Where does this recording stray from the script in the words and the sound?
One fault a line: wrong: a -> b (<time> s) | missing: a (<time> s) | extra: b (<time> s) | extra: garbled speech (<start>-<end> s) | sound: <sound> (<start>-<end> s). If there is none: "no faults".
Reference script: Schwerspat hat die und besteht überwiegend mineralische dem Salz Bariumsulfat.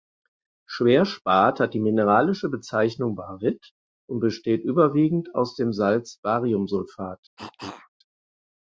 extra: mineralische Bezeichnung Baryt (1.8 s)
wrong: mineralische -> aus (5.3 s)
sound: cough (7.4-7.9 s)